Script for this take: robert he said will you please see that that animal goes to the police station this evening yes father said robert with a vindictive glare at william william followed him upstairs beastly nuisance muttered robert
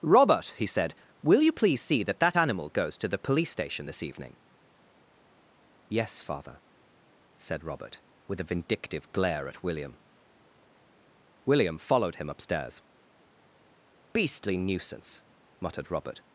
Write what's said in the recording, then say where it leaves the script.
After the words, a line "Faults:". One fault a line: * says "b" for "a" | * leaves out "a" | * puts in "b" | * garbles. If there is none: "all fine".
robert he said will you please see that that animal goes to the police station this evening yes father said robert with a vindictive glare at william william followed him upstairs beastly nuisance muttered robert
Faults:
all fine